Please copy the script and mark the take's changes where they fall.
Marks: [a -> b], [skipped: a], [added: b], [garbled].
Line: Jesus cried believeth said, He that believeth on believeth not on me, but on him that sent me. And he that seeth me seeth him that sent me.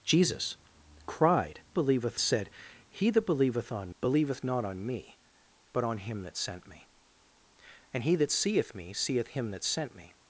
Jesus cried believeth said, He that believeth on believeth not on me, but on him that sent me. And he that seeth me seeth him that sent me.